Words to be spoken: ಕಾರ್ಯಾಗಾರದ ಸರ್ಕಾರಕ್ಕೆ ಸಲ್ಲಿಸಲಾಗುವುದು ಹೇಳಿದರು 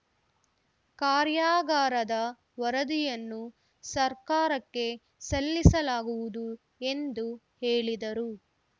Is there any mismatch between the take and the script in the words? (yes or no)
yes